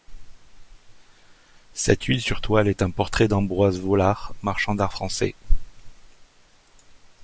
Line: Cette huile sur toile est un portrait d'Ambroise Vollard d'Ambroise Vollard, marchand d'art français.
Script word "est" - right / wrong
right